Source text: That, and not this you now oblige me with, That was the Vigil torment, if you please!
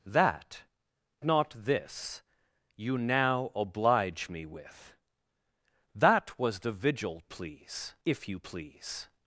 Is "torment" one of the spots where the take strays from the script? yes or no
yes